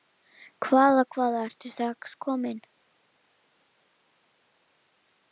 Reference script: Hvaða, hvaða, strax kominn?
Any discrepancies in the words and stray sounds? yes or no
yes